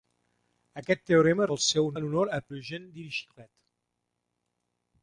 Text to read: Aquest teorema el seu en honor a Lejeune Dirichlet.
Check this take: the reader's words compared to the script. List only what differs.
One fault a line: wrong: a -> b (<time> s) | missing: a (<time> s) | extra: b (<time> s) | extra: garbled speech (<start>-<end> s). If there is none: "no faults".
no faults